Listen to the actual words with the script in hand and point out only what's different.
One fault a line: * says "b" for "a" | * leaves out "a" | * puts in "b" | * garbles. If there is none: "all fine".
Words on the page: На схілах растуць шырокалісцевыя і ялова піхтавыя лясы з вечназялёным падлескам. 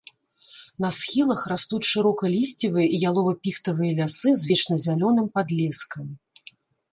all fine